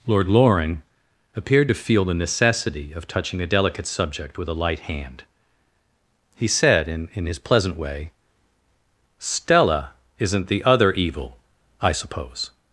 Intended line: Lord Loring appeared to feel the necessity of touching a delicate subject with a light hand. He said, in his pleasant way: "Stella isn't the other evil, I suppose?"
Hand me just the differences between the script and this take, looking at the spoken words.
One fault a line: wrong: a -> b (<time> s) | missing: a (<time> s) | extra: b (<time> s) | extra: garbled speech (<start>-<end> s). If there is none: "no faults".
extra: in (7.1 s)